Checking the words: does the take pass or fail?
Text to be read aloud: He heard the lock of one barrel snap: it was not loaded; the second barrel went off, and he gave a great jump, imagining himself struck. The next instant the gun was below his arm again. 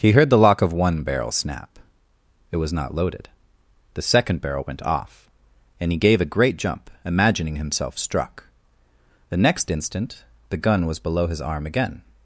pass